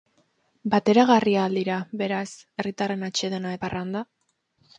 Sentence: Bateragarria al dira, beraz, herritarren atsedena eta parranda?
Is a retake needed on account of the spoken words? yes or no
yes